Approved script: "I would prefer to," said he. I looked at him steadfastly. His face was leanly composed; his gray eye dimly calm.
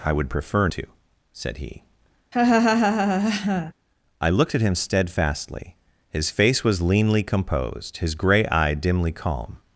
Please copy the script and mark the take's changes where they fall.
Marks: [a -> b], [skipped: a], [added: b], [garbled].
"I would prefer to," said he. I looked at him steadfastly. His face was leanly composed; his gray eye dimly calm.